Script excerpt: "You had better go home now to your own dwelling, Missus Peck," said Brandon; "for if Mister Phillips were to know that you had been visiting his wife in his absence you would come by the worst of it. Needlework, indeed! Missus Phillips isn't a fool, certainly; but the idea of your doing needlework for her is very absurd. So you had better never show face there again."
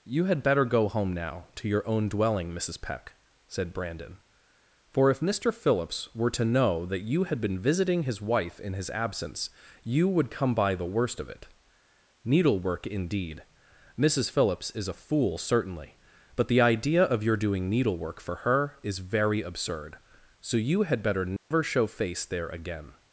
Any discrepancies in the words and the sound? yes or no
yes